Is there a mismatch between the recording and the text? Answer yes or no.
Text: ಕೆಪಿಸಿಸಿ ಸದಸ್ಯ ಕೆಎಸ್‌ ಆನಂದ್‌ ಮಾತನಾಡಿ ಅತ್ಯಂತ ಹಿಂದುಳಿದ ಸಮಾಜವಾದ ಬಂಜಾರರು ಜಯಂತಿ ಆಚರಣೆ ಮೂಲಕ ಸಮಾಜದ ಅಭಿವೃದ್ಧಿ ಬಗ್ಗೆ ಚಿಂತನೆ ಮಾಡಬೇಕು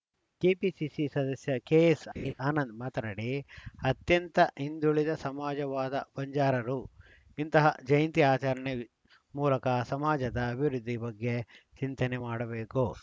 yes